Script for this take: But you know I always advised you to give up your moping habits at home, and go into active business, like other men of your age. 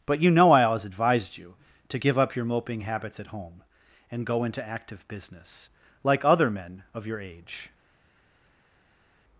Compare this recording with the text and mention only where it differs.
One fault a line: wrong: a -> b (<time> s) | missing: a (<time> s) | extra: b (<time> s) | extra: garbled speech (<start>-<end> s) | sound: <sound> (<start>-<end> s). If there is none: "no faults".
no faults